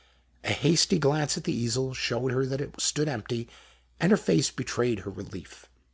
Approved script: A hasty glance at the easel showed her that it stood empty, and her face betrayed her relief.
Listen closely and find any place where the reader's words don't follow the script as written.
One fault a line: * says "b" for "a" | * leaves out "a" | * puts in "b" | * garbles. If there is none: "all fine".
all fine